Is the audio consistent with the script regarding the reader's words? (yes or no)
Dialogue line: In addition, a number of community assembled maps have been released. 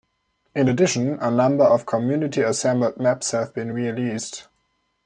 yes